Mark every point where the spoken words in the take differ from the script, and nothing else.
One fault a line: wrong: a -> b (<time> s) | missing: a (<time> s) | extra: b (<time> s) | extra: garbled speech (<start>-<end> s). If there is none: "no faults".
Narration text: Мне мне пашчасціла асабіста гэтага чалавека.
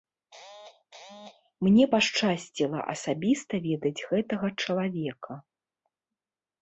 missing: мне (1.9 s)
extra: ведаць (3.7 s)